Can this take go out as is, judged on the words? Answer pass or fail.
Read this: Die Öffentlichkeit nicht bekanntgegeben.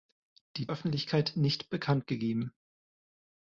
pass